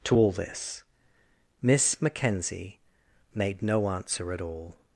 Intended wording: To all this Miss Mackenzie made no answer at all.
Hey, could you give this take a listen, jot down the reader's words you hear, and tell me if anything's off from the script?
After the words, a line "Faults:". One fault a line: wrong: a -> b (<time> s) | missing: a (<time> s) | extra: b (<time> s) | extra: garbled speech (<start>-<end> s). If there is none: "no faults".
To all this Miss Mackenzie made no answer at all.
Faults:
no faults